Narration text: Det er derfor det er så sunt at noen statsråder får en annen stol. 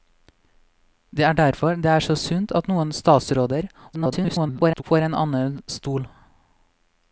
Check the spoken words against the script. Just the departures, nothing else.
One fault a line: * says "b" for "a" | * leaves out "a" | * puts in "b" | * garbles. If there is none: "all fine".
* garbles